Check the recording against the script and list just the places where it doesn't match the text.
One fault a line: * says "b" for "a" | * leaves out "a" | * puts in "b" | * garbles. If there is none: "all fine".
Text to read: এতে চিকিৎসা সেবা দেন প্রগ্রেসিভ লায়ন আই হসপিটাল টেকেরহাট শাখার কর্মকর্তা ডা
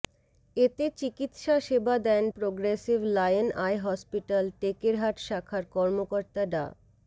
all fine